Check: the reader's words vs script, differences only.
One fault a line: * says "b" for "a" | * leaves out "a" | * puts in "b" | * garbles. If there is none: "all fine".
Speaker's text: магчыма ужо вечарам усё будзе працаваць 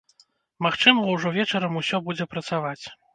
all fine